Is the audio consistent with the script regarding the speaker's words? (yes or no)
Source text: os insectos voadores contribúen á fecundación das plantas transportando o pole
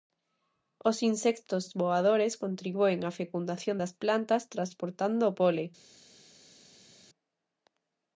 yes